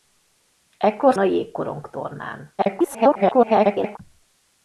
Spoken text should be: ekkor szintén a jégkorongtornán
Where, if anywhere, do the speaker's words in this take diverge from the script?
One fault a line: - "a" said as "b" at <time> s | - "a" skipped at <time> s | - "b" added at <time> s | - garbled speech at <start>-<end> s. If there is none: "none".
- "szintén" skipped at 1.1 s
- garbled speech at 2.6-4.0 s